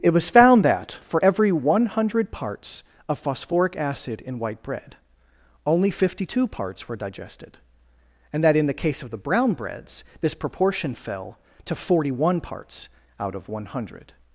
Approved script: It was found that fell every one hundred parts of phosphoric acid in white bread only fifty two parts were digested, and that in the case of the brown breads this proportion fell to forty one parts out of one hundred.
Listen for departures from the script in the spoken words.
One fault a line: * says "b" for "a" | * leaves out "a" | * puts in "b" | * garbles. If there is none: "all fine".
* says "for" for "fell"